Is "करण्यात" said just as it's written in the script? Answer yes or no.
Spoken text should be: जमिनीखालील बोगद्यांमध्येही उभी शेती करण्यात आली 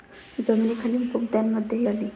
no